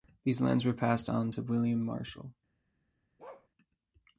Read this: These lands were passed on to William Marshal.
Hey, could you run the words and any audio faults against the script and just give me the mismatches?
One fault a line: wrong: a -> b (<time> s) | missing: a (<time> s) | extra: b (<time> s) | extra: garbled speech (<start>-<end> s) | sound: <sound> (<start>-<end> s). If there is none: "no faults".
sound: bark (3.2-3.5 s)